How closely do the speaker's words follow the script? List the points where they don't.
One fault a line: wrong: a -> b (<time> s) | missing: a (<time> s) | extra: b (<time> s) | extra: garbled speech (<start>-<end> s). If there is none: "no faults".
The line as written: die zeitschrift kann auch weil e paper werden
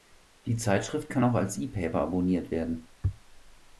wrong: weil -> als (1.3 s)
extra: abonniert (2.0 s)